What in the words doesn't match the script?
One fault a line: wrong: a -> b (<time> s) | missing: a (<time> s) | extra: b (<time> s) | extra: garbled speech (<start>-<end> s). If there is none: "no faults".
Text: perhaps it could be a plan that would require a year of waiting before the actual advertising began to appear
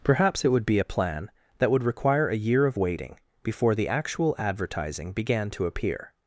wrong: could -> would (0.5 s)